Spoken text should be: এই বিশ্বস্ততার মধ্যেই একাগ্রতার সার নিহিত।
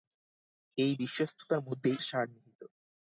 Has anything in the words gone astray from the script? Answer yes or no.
yes